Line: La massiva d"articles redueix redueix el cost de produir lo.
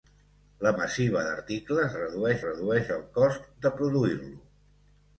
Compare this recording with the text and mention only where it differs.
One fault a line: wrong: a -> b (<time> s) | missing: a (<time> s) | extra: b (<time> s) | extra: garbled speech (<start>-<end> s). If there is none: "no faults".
no faults